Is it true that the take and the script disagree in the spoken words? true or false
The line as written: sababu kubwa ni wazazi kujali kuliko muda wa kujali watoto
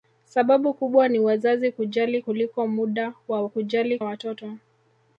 false